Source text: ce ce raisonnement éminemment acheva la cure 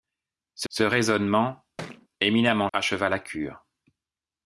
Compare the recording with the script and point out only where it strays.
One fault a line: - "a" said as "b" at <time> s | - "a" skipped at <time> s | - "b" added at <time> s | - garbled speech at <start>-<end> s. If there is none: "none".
none